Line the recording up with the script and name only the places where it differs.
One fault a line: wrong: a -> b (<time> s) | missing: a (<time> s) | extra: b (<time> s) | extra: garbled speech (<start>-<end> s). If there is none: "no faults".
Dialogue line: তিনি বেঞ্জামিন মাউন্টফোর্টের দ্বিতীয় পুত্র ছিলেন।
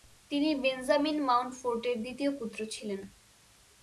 no faults